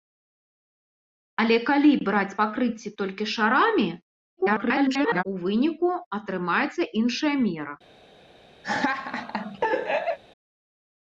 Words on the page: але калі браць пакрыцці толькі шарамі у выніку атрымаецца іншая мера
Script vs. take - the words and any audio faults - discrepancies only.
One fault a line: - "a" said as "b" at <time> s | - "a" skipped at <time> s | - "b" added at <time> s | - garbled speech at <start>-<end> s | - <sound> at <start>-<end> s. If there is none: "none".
- garbled speech at 4.4-5.2 s
- laugh at 8.6-10.2 s